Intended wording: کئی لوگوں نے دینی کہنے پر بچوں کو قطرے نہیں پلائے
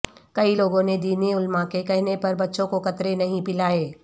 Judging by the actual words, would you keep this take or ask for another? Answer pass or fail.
fail